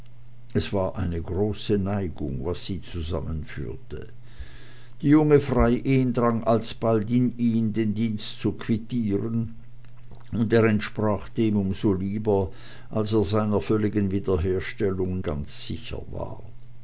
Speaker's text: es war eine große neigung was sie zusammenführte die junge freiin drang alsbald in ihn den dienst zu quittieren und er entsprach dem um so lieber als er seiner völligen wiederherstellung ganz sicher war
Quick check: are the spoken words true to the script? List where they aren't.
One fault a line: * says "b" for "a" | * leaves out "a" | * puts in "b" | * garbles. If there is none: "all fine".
all fine